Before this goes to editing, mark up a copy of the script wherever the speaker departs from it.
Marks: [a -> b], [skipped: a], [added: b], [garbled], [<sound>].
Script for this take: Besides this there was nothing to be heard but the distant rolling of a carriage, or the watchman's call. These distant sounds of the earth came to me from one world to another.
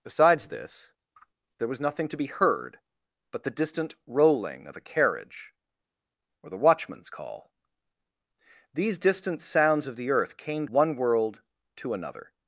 Besides this there was nothing to be heard but the distant rolling of a carriage, or the watchman's call. These distant sounds of the earth came [skipped: to me from] one world to another.